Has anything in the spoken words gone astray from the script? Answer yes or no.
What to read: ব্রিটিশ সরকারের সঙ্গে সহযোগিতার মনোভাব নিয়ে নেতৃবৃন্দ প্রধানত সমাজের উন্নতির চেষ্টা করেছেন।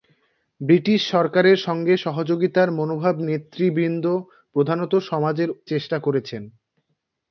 yes